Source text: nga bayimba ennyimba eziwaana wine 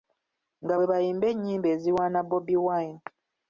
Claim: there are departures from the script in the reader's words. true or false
true